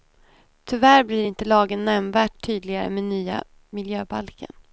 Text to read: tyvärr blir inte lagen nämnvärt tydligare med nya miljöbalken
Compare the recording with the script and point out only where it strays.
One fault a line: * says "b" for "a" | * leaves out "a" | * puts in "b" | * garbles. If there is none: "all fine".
all fine